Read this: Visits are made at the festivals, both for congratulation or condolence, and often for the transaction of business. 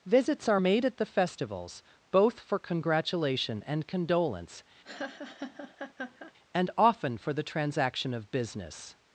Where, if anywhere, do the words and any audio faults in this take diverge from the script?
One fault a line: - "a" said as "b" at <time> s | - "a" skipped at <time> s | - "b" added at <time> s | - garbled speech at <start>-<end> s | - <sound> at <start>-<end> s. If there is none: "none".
- "or" said as "and" at 3.6 s
- laugh at 4.8-6.3 s